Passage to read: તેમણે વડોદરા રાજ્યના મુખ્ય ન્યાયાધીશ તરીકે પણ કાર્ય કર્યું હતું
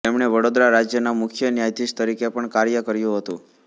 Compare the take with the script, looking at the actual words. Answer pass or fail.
pass